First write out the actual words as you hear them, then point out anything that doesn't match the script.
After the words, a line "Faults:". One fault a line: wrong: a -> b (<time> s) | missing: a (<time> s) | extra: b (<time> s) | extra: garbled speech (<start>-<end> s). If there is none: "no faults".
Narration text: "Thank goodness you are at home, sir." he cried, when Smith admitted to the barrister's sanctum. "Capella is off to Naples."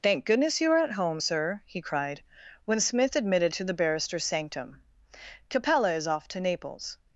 "Thank goodness you are at home, sir." he cried, when Smith admitted to the barrister's sanctum. "Capella is off to Naples."
Faults:
no faults